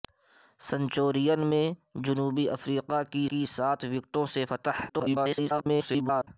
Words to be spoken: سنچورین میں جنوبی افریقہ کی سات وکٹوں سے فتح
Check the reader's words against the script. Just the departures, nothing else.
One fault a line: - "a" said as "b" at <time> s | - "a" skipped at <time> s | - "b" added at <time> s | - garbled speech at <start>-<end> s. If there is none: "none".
- "کی" added at 3.3 s
- garbled speech at 4.9-6.3 s